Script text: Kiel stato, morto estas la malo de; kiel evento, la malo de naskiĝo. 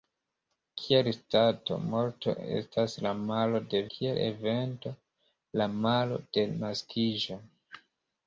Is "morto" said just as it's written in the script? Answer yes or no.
yes